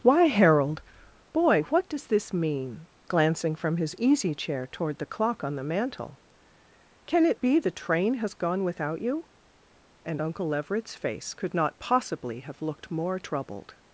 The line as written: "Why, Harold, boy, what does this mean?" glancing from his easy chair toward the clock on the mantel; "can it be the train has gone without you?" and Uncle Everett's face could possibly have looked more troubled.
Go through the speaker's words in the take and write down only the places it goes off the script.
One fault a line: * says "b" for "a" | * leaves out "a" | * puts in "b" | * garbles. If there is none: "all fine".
* puts in "not"